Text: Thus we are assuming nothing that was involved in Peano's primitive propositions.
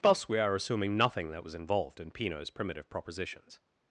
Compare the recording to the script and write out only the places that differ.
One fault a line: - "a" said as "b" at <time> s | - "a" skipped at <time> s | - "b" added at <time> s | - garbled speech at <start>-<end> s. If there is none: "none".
none